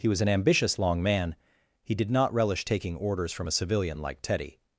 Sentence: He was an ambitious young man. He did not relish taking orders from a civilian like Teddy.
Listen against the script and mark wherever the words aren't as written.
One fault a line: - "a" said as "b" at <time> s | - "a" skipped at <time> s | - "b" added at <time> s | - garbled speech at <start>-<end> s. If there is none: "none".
- "young" said as "long" at 0.8 s